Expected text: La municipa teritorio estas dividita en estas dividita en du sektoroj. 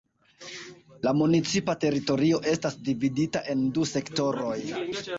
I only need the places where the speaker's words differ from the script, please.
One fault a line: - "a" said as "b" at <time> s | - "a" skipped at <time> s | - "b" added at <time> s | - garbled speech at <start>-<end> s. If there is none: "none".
- "estas dividita en" skipped at 3.6 s